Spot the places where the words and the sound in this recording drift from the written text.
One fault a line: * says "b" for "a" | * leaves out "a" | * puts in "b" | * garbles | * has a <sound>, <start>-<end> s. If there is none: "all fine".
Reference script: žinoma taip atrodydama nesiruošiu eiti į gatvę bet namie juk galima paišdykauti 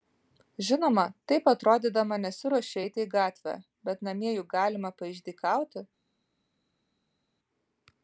all fine